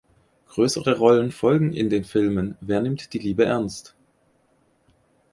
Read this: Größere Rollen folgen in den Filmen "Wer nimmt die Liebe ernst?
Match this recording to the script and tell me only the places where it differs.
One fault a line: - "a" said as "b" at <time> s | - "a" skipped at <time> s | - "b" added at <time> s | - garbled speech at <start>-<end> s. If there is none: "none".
none